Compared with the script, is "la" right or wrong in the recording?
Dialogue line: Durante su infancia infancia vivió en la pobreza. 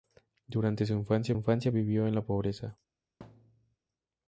right